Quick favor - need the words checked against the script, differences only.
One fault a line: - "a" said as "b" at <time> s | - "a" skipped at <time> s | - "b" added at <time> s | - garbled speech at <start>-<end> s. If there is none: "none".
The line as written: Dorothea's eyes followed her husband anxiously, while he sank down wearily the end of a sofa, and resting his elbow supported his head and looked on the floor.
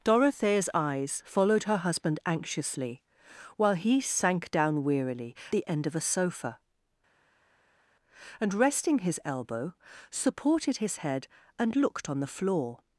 none